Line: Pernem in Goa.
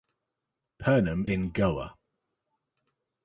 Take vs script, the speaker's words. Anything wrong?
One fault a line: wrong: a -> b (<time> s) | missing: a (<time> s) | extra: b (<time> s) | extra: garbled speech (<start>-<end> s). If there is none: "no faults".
no faults